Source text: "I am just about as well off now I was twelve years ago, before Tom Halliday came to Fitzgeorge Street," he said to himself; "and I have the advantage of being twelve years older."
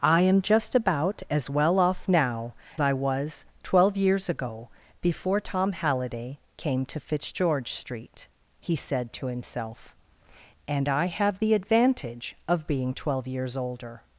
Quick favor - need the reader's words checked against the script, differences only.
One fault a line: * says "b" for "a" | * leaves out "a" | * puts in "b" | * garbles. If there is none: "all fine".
all fine